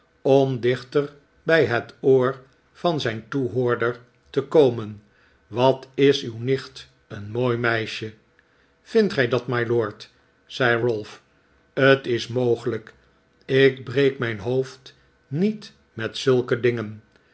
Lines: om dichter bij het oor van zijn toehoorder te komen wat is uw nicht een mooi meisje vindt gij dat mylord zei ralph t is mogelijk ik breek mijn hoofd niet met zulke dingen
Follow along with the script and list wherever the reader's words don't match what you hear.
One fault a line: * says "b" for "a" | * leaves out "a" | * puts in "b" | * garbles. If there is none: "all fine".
all fine